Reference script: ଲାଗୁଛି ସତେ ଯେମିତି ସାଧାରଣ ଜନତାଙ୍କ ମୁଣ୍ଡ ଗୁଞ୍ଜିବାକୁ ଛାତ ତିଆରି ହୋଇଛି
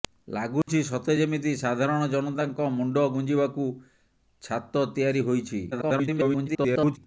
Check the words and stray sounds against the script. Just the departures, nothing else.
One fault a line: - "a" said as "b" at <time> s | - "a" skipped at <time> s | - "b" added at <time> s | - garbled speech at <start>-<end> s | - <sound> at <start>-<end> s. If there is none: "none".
- dropout at 0.6-0.7 s
- garbled speech at 5.7-7.0 s